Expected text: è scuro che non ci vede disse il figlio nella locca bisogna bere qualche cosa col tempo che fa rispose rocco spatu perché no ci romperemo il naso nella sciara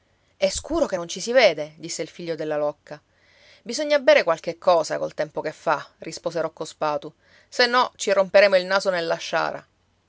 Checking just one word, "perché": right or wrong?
wrong